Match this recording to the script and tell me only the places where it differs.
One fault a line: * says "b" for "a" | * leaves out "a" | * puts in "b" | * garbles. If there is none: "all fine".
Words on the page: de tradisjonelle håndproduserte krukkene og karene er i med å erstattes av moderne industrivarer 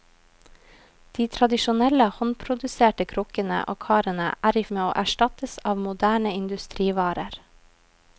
all fine